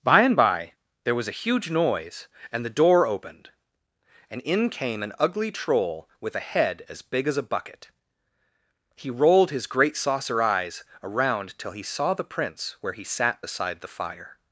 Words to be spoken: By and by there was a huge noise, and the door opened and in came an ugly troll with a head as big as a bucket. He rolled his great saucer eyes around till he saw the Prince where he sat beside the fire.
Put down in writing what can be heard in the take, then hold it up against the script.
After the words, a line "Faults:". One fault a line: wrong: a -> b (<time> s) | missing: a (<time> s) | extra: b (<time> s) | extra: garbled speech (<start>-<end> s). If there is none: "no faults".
By and by there was a huge noise, and the door opened and in came an ugly troll with a head as big as a bucket. He rolled his great saucer eyes around till he saw the Prince where he sat beside the fire.
Faults:
no faults